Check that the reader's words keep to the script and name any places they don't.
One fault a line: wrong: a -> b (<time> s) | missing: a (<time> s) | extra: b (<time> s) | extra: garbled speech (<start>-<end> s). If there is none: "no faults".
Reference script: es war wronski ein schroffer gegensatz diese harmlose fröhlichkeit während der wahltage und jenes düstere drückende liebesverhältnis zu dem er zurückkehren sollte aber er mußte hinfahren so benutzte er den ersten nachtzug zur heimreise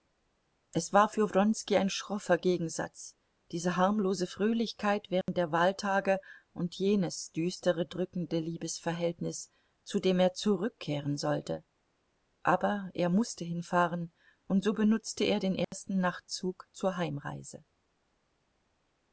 extra: für (1.1 s)
extra: und (14.5 s)